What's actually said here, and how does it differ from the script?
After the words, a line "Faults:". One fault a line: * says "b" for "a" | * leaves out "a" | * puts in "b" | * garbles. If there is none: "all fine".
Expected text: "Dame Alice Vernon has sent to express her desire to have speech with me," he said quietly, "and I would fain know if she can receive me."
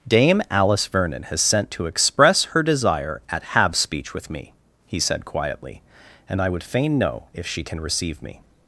"Dame Alice Vernon has sent to express her desire at have speech with me," he said quietly, "and I would fain know if she can receive me."
Faults:
* says "at" for "to"